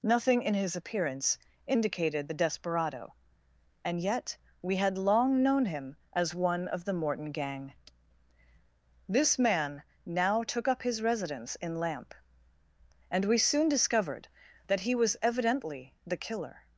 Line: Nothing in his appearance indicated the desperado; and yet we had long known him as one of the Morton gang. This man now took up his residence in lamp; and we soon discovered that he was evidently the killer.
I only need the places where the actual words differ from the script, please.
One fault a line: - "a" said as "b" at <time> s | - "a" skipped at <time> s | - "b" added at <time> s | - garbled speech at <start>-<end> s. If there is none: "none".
none